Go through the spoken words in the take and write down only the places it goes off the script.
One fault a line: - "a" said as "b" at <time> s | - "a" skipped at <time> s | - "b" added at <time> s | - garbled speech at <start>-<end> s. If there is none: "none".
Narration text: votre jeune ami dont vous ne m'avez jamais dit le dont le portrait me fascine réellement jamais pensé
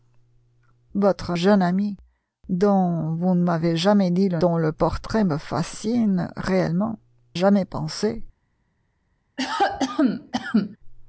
none